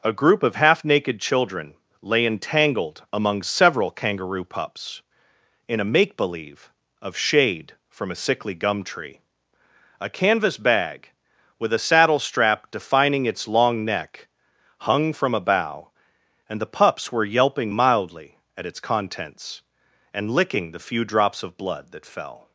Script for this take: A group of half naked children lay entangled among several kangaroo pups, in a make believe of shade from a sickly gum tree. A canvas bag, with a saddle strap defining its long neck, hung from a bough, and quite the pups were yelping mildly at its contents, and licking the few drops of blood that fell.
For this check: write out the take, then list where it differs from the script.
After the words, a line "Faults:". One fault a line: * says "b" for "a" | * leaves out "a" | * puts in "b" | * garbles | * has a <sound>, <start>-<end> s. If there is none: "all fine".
A group of half naked children lay entangled among several kangaroo pups, in a make believe of shade from a sickly gum tree. A canvas bag, with a saddle strap defining its long neck, hung from a bough, and the pups were yelping mildly at its contents, and licking the few drops of blood that fell.
Faults:
* leaves out "quite"